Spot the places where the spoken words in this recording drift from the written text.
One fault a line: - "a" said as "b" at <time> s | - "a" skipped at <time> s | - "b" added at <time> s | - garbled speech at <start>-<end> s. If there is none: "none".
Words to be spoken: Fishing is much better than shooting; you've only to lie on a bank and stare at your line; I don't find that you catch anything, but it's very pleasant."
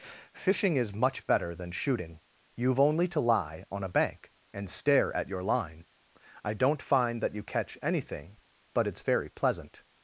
none